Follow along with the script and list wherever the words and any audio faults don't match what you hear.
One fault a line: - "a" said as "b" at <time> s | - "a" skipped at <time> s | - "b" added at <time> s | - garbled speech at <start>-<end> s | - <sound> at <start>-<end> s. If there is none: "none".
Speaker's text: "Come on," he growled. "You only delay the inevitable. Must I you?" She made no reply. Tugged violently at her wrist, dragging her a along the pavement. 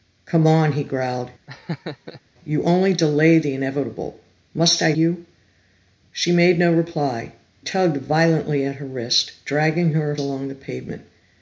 - laugh at 1.5-2.2 s